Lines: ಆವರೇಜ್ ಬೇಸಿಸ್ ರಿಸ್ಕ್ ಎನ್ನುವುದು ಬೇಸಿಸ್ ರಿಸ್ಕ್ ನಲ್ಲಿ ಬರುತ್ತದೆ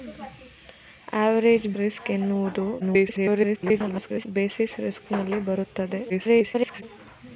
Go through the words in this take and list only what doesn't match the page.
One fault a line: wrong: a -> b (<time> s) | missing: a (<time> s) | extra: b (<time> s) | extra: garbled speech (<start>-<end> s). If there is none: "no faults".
missing: ಬೇಸಿಸ್ (1.7 s)
extra: garbled speech (2.8-4.3 s)
extra: garbled speech (6.1-6.8 s)